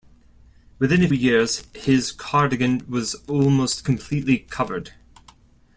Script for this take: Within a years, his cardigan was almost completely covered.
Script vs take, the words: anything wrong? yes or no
no